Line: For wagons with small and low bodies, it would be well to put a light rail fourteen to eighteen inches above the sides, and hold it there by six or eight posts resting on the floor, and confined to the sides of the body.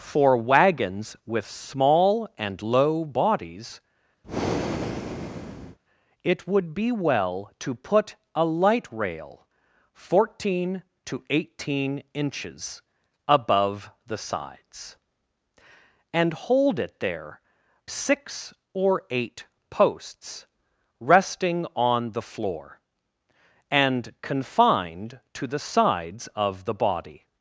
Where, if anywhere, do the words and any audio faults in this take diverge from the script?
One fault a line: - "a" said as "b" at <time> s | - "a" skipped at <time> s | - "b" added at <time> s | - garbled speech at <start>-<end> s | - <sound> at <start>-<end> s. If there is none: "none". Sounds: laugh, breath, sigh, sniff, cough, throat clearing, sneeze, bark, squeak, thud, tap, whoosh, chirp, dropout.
- breath at 4.2-5.8 s
- "by" skipped at 17.4 s